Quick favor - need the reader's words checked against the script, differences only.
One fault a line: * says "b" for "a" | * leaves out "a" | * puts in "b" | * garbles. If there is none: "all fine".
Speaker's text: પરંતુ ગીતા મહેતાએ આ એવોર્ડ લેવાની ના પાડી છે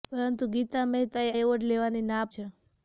* leaves out "આ"
* leaves out "પાડી"